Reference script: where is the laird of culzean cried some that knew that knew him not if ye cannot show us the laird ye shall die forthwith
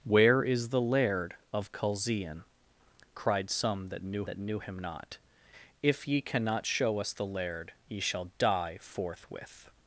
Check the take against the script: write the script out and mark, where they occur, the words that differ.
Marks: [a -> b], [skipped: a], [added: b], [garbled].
where is the laird of culzean cried some that knew that knew him not if ye cannot show us the laird ye shall die forthwith